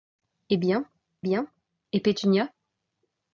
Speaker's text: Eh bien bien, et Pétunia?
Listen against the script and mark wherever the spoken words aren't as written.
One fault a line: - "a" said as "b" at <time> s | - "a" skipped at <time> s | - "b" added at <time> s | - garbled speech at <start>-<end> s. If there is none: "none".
none